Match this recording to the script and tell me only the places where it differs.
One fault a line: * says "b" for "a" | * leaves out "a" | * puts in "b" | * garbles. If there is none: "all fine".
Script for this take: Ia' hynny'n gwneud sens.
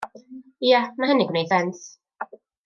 * puts in "ma"